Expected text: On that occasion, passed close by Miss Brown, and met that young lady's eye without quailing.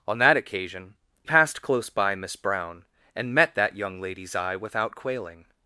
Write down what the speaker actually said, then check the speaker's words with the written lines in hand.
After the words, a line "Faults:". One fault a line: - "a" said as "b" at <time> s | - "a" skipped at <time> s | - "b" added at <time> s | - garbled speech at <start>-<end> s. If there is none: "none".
On that occasion, passed close by Miss Brown, and met that young lady's eye without quailing.
Faults:
none